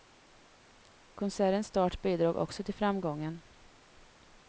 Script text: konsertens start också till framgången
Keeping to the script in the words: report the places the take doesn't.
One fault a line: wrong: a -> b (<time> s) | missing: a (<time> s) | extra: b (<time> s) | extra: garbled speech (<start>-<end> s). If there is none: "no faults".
extra: bidrog (2.0 s)